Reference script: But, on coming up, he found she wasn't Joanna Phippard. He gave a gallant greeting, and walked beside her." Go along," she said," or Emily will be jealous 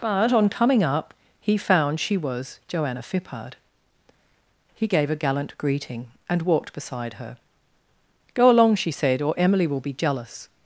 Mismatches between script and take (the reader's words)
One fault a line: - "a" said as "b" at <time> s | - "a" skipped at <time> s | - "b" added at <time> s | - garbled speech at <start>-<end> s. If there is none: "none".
- "wasn't" said as "was" at 2.2 s